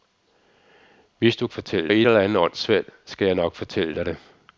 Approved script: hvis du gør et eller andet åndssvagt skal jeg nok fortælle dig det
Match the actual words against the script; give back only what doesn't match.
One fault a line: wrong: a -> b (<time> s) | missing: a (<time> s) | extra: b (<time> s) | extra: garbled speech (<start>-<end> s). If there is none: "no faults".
wrong: gør -> fortælle (1.5 s)